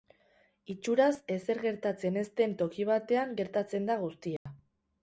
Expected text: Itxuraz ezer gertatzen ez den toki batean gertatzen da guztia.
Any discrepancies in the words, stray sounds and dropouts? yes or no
yes